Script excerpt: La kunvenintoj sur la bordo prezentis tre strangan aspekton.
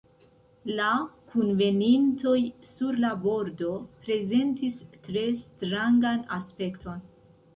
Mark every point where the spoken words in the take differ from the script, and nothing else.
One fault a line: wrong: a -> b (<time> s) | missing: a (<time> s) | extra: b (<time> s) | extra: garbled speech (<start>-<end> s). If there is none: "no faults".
no faults